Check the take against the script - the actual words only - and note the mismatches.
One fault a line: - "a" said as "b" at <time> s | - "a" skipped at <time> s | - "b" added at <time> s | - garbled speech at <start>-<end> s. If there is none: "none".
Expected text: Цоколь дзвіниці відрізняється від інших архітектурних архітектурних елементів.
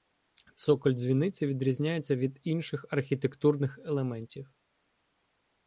- "архітектурних" skipped at 3.8 s